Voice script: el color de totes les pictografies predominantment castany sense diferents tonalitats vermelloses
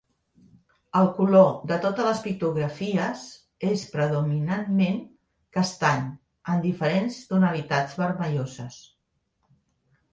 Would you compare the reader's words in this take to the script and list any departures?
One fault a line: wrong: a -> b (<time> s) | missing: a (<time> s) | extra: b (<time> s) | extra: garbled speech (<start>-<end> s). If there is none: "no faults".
extra: és (3.7 s)
wrong: sense -> amb (6.5 s)